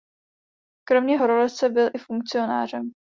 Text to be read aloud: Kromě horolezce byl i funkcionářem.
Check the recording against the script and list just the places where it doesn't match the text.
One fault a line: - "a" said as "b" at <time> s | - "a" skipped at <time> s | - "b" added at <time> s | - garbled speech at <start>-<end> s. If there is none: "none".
none